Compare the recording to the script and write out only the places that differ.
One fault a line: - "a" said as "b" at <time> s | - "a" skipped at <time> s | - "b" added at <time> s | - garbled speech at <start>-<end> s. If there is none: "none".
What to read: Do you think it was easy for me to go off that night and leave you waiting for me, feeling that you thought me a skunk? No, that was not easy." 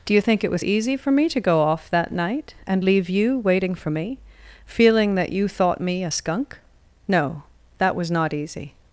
none